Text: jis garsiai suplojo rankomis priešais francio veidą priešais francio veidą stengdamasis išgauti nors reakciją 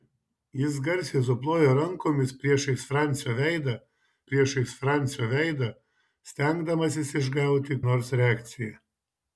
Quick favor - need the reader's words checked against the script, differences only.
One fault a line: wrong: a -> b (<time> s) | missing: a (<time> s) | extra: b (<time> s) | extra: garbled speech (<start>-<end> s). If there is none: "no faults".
no faults